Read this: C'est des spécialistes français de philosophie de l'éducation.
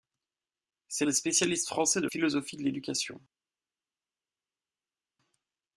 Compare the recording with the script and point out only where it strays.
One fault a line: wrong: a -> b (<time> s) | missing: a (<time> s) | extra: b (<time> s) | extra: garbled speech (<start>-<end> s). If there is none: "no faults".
no faults